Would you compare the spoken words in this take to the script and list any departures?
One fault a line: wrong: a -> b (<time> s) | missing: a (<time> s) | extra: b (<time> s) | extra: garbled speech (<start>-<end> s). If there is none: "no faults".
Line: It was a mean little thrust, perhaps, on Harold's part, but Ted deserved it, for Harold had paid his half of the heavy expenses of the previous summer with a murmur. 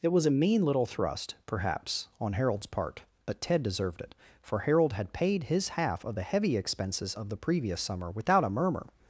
wrong: with -> without (8.1 s)